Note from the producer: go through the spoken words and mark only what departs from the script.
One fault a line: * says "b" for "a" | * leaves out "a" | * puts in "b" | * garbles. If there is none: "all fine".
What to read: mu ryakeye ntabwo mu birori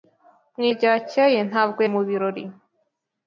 all fine